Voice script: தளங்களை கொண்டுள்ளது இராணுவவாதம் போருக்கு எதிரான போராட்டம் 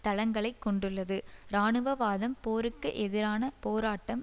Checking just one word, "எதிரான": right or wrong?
right